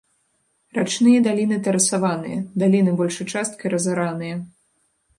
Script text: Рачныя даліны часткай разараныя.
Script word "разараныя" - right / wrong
right